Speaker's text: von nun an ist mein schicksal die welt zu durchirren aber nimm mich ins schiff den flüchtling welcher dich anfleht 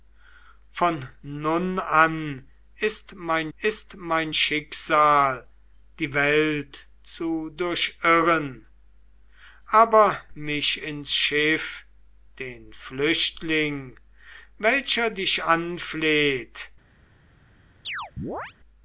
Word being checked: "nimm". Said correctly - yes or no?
no